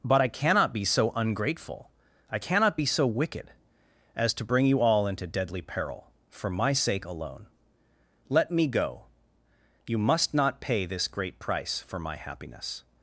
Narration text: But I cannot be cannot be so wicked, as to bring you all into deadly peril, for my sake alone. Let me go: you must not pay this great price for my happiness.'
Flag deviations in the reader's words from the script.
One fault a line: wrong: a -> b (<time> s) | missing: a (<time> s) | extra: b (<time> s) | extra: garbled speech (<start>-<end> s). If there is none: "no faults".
extra: so ungrateful I (0.8 s)